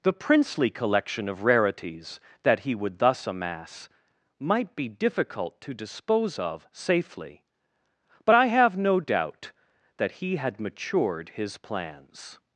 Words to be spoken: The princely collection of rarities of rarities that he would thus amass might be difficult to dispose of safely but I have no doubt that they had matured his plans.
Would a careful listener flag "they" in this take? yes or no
yes